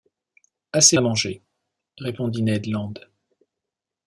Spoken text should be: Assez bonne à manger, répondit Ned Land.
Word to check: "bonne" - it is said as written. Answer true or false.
false